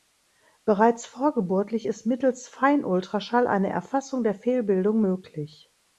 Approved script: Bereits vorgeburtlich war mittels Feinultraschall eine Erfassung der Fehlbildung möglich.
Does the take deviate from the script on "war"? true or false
true